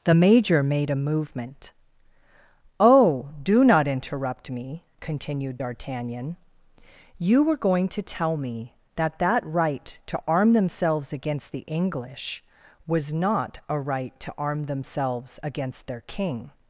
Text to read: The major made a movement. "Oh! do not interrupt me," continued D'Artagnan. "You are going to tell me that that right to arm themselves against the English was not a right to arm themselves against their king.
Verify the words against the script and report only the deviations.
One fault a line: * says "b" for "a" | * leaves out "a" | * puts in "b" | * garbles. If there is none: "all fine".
* says "were" for "are"